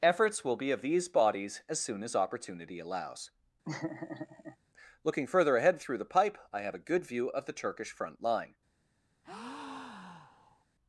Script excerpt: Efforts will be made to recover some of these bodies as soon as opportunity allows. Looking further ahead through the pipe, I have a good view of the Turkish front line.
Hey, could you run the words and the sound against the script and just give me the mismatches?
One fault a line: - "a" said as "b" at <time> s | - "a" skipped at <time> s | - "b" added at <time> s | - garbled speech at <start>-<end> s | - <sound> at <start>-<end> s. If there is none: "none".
- "made to recover some" skipped at 0.7 s
- laugh at 3.6-4.6 s
- breath at 9.2-10.6 s